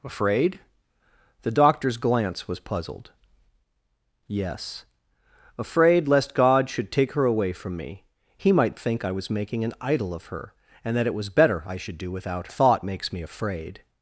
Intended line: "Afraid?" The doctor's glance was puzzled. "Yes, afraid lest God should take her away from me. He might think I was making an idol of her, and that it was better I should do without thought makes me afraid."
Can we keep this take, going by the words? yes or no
yes